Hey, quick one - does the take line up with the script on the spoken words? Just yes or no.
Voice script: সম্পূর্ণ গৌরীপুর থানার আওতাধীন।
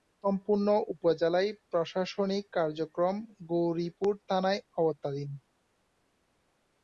no